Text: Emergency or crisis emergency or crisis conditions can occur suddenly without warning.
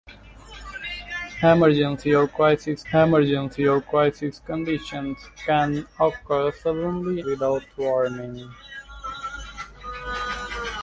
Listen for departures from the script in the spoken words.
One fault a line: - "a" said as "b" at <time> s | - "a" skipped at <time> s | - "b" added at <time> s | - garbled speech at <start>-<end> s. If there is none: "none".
none